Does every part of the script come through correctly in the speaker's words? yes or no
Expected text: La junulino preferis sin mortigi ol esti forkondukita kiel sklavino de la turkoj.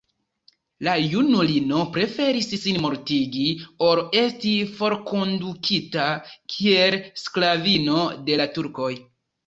yes